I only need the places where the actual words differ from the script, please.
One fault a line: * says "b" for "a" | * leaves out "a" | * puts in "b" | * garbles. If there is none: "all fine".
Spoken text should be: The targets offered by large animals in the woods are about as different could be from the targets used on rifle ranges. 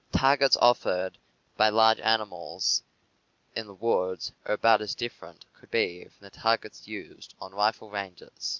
all fine